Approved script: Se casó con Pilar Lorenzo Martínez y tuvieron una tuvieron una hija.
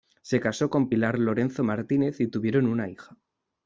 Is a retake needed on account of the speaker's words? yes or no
yes